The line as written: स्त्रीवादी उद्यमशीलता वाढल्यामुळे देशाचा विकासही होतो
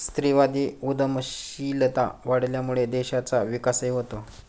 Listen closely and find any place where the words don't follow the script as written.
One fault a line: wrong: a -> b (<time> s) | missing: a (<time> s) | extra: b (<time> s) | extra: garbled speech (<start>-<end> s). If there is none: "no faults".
no faults